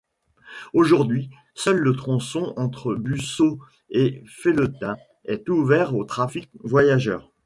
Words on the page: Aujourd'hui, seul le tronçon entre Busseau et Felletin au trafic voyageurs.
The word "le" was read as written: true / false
true